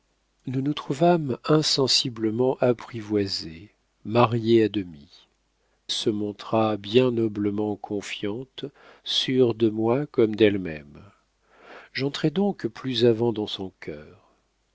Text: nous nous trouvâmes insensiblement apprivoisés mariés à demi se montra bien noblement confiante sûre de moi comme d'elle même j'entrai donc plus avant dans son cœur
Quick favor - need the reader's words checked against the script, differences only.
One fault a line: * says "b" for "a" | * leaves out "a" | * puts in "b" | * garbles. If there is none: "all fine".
all fine